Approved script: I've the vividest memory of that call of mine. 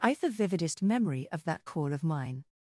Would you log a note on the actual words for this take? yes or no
no